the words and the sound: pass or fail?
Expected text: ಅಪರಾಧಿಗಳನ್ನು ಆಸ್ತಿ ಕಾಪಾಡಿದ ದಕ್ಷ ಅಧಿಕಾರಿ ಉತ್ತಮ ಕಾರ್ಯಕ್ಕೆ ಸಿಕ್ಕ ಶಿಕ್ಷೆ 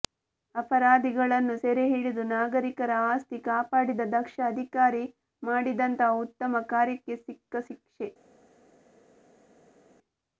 fail